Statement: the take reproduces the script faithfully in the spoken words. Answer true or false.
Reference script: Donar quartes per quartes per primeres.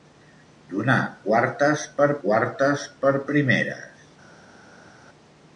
true